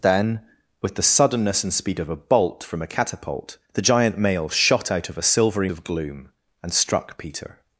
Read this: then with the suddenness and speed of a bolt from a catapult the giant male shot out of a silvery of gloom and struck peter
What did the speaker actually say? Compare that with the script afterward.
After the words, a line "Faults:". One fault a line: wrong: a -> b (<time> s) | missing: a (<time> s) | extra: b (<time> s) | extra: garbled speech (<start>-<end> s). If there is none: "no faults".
then with the suddenness and speed of a bolt from a catapult the giant male shot out of a silvery of gloom and struck peter
Faults:
no faults